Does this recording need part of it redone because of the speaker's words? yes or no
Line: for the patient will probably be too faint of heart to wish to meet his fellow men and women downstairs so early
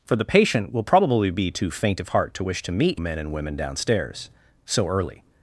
yes